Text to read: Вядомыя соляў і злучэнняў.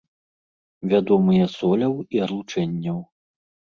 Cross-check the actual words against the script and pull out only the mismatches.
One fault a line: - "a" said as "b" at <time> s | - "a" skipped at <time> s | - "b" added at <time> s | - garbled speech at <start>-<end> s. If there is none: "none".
none